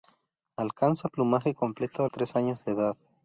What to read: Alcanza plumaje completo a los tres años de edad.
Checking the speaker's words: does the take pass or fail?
fail